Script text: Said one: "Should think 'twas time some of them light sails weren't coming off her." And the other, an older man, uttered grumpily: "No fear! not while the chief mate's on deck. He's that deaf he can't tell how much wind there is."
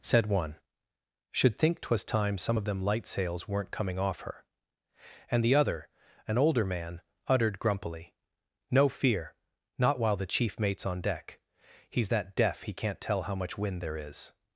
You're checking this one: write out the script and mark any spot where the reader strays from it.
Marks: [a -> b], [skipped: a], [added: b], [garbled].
Said one: "Should think 'twas time some of them light sails weren't coming off her." And the other, an older man, uttered grumpily: "No fear! not while the chief mate's on deck. He's that deaf he can't tell how much wind there is."